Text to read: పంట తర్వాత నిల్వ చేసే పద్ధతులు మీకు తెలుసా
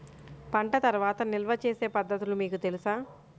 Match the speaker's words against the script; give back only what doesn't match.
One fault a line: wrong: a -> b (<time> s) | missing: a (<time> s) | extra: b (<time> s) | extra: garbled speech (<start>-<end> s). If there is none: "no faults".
no faults